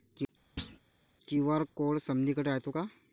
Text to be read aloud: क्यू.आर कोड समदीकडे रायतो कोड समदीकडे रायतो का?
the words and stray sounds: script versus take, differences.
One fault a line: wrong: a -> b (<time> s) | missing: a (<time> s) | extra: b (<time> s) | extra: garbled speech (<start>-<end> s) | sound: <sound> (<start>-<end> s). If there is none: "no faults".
sound: thud (0.6-0.8 s)
missing: कोड समदीकडे रायतो (2.7 s)